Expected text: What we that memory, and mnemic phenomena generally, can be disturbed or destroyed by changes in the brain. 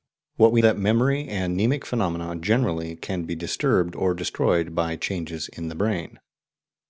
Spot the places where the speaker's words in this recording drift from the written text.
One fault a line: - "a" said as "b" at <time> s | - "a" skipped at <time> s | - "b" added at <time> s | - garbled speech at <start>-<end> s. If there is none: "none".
none